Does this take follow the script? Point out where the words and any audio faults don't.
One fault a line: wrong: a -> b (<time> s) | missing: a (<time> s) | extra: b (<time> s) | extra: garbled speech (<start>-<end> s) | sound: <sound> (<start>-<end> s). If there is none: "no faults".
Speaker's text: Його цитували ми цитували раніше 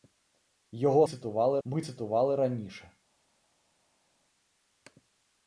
no faults